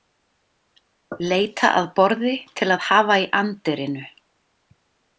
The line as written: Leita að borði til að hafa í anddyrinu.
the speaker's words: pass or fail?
pass